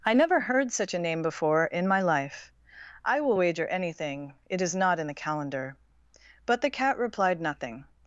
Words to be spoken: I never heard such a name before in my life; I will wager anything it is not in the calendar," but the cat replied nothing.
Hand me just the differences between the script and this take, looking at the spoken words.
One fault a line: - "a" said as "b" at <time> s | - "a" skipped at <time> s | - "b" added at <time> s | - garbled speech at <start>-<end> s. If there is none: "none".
none